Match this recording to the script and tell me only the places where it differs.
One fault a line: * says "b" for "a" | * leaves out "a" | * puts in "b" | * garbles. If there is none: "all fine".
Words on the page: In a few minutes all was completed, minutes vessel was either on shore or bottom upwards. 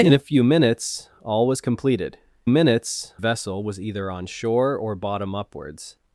all fine